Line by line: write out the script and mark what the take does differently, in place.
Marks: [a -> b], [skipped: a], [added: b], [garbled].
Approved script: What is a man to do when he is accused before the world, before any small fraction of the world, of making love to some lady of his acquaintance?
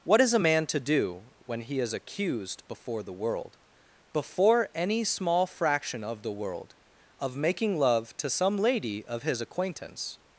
What is a man to do when he is accused before the world, before any small fraction of the world, of making love to some lady of his acquaintance?